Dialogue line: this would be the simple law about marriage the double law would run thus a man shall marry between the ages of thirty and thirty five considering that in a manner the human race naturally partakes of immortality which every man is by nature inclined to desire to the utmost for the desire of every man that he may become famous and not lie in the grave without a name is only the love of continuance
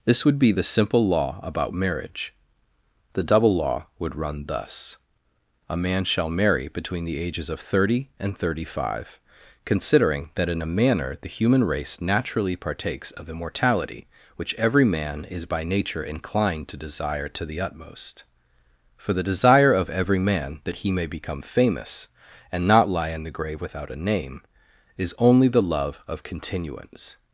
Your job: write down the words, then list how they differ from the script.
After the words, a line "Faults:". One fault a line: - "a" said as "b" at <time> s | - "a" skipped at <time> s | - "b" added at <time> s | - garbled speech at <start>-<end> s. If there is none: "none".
this would be the simple law about marriage the double law would run thus a man shall marry between the ages of thirty and thirty five considering that in a manner the human race naturally partakes of immortality which every man is by nature inclined to desire to the utmost for the desire of every man that he may become famous and not lie in the grave without a name is only the love of continuance
Faults:
none